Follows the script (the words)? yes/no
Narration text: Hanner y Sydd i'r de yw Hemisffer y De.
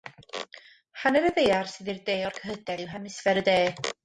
no